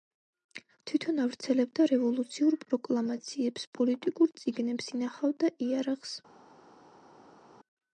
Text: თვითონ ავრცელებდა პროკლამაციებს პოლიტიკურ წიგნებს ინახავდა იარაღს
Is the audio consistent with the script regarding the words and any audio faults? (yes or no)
no